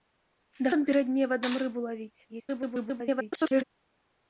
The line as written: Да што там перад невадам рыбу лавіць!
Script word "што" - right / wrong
wrong